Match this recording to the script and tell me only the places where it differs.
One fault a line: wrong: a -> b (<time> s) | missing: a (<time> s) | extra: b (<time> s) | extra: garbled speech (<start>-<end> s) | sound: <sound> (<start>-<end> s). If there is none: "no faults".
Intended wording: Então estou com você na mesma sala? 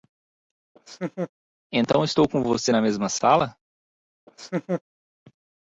sound: laugh (0.8-1.3 s)
sound: laugh (4.3-4.8 s)